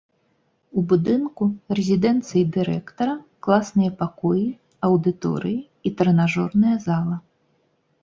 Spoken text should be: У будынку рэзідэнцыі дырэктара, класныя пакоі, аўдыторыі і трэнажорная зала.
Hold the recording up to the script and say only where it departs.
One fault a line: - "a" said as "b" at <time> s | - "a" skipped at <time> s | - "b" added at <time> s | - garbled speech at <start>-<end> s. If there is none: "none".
none